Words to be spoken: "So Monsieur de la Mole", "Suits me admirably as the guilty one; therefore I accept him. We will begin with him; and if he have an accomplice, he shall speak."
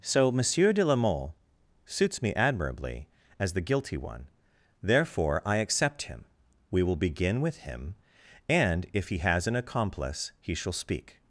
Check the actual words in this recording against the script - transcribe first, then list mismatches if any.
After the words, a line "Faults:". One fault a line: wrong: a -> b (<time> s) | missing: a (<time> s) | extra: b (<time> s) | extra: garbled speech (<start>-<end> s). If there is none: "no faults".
"So Monsieur de la Mole", "Suits me admirably as the guilty one; therefore I accept him. We will begin with him; and if he has an accomplice, he shall speak."
Faults:
wrong: have -> has (9.2 s)